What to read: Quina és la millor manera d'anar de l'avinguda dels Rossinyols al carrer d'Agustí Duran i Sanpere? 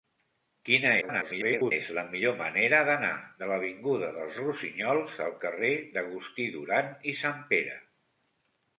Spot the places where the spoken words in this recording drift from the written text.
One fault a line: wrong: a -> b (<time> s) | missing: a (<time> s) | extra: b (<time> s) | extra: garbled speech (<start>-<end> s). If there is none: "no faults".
extra: garbled speech (1.0-1.7 s)